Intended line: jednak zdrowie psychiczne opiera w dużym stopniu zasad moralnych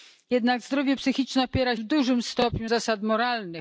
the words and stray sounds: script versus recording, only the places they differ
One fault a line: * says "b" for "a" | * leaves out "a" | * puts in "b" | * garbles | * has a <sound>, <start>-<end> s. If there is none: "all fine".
all fine